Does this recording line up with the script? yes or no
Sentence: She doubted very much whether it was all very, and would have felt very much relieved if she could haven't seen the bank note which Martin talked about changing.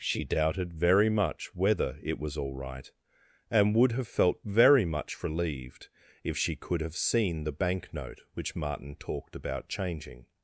no